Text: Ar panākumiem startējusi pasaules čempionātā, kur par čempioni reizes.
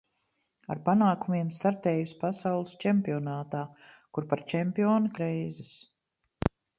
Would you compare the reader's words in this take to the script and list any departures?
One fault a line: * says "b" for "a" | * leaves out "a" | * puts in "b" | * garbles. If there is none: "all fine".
all fine